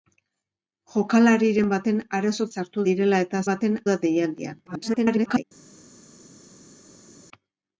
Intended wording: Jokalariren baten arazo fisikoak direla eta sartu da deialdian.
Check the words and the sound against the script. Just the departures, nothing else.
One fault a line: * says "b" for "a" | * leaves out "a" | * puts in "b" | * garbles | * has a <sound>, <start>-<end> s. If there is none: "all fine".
* says "sartu" for "fisikoak"
* says "baten" for "sartu"
* garbles